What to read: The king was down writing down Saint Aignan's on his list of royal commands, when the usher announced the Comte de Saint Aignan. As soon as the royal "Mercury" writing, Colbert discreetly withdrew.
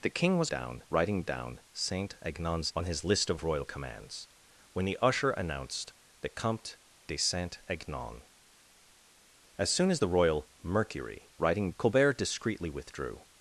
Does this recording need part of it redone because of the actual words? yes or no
no